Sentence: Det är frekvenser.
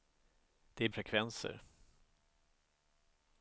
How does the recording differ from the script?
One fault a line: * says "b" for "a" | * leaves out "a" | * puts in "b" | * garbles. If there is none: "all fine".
all fine